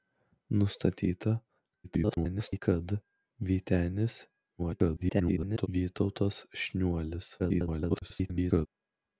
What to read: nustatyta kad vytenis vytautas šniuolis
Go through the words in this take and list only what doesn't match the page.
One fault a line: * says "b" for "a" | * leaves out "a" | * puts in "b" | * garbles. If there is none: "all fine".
* garbles
* garbles
* garbles